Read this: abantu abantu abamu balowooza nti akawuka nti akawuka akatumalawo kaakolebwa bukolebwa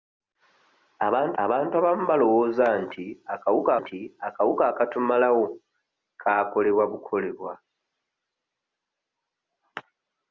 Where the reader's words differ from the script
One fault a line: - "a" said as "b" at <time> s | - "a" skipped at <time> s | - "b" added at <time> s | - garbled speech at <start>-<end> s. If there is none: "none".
none